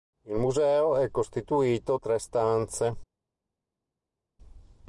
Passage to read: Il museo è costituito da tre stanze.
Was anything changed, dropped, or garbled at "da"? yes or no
yes